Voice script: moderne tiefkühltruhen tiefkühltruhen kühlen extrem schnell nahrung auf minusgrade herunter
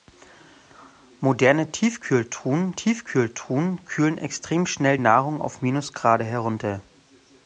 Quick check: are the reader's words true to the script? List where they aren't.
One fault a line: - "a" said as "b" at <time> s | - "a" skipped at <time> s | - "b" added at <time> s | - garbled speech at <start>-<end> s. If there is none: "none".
none